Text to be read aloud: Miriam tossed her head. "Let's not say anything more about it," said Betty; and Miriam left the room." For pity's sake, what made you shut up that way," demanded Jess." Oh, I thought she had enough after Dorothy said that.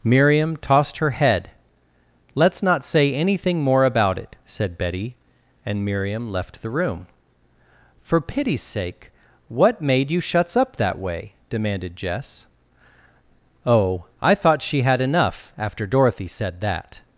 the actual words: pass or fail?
fail